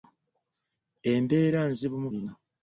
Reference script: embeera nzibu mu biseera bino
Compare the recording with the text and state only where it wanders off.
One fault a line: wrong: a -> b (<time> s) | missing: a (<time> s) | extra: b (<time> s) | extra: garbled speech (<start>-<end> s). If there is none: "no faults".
missing: biseera (2.1 s)